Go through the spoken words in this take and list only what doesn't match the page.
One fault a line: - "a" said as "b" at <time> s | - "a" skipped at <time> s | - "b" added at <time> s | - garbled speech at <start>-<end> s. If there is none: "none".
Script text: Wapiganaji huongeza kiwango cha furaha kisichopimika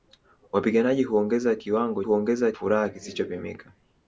- "cha" said as "huongeza" at 2.0 s